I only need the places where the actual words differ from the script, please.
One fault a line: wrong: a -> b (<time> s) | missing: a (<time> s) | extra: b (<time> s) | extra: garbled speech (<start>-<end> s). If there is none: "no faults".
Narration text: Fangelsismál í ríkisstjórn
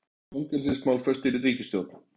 extra: föst (1.1 s)